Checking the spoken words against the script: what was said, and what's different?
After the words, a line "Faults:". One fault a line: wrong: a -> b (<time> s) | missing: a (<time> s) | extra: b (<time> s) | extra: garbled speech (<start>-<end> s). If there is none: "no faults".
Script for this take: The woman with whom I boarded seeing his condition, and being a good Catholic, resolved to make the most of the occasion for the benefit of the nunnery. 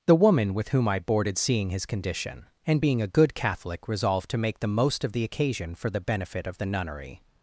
The woman with whom I boarded seeing his condition, and being a good Catholic, resolved to make the most of the occasion for the benefit of the nunnery.
Faults:
no faults